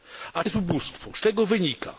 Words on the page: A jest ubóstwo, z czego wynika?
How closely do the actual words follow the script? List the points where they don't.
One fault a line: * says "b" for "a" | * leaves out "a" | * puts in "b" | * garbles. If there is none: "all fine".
all fine